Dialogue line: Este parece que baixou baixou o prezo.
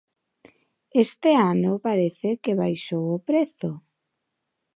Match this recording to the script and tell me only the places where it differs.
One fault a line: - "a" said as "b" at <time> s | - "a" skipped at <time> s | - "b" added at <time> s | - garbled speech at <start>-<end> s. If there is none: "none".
- "ano" added at 1.5 s
- "baixou" skipped at 3.0 s